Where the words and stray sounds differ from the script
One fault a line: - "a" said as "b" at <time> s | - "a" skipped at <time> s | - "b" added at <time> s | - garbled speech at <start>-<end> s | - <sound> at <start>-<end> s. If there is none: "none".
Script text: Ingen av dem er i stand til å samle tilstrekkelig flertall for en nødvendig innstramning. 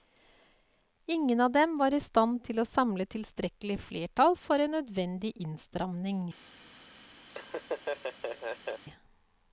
- "er" said as "var" at 1.8 s
- laugh at 7.3-8.8 s